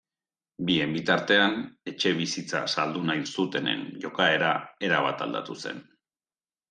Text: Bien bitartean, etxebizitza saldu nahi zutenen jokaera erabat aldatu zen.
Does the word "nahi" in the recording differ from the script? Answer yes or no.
no